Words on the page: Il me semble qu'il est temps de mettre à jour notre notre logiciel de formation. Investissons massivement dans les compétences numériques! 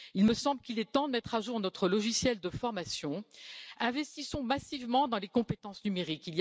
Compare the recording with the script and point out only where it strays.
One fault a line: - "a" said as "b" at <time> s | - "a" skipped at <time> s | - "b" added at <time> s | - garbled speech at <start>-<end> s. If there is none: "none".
- "notre" skipped at 1.9 s